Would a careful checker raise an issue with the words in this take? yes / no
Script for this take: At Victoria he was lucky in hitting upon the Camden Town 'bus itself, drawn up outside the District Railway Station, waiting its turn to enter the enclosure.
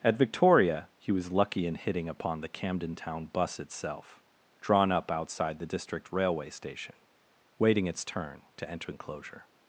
yes